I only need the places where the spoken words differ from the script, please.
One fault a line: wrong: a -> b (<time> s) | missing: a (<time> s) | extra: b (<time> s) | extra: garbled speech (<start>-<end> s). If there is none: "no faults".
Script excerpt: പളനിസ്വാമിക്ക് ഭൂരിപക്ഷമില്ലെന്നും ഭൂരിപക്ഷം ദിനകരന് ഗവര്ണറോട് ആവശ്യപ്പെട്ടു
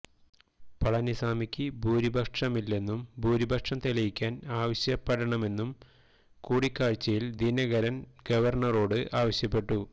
extra: തെളിയിക്കാന് ആവശ്യപ്പെടണമെന്നും കൂടിക്കാഴ്ചയില് (3.8 s)